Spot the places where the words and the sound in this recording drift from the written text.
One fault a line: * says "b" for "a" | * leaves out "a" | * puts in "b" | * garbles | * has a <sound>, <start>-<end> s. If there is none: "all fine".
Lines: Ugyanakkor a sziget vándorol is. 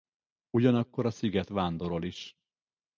all fine